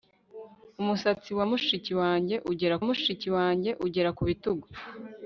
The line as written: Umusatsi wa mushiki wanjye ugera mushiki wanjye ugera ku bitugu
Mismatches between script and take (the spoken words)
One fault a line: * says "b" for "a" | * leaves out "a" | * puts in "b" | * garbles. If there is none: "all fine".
all fine